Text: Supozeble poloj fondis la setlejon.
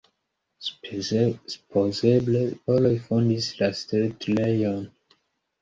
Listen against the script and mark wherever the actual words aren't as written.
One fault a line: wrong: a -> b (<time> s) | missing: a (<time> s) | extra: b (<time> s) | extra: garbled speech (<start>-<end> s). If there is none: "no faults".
no faults